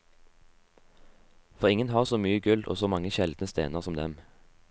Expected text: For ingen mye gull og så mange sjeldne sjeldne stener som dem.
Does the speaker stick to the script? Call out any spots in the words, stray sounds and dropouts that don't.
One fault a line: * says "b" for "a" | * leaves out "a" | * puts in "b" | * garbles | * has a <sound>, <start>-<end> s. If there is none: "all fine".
* puts in "har så"
* leaves out "sjeldne"